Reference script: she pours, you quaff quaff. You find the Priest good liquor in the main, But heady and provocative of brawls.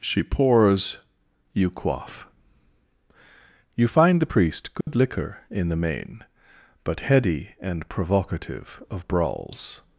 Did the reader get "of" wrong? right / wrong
right